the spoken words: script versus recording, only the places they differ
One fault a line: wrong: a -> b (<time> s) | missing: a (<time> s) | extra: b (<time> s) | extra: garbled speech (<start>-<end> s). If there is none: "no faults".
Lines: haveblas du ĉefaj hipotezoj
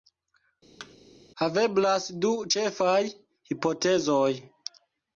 no faults